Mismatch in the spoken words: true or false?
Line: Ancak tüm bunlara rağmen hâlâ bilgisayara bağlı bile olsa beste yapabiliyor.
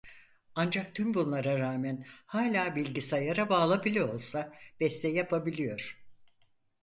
false